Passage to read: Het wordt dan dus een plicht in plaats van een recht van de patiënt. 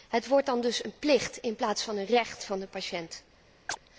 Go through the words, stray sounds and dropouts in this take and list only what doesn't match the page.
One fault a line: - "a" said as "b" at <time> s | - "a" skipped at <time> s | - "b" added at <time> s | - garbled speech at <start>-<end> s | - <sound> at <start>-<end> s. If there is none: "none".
- chirp at 3.7-3.8 s